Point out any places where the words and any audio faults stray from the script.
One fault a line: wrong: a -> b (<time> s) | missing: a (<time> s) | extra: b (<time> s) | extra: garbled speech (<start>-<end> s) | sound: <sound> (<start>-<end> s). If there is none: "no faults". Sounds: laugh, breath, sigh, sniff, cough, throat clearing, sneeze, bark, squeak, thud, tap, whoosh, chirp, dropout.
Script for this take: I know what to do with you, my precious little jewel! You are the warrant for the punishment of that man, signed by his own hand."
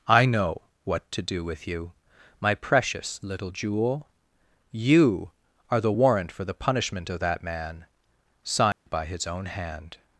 sound: dropout (8.7-8.9 s)